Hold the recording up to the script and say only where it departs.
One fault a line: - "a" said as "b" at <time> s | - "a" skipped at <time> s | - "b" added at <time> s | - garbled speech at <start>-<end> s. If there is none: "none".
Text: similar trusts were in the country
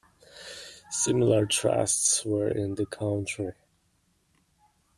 none